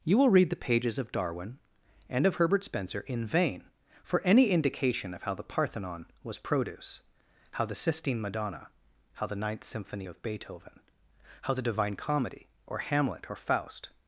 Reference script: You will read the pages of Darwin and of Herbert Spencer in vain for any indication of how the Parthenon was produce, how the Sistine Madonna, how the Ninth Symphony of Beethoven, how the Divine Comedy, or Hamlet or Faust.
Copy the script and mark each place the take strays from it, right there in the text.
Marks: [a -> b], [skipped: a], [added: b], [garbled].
You will read the pages of Darwin and of Herbert Spencer in vain for any indication of how the Parthenon was produce, how the Sistine Madonna, how the Ninth Symphony of Beethoven, how the Divine Comedy, or Hamlet or Faust.